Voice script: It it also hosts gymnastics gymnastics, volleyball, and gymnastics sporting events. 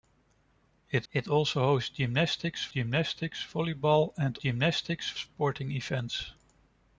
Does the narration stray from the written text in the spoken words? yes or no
no